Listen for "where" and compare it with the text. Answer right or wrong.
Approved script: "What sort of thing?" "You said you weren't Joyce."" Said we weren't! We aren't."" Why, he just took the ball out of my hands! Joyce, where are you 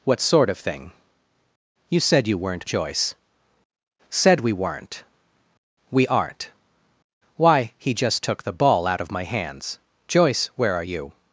right